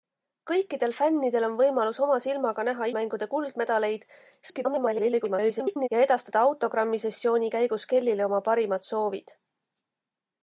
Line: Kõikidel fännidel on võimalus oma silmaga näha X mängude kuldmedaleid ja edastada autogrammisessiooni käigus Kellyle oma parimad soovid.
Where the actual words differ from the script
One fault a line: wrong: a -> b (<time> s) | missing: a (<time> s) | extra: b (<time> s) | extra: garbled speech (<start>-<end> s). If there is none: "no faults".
missing: X (2.9 s)
extra: garbled speech (4.4-5.9 s)